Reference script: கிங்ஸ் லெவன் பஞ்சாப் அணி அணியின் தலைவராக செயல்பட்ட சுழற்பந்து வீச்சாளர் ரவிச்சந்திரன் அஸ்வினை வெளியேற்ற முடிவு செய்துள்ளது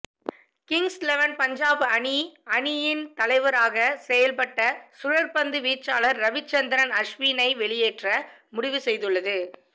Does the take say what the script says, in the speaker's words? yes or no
yes